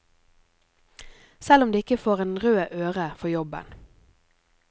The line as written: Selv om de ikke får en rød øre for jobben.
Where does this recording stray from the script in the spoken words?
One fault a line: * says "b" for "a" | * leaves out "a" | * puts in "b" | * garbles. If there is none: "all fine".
all fine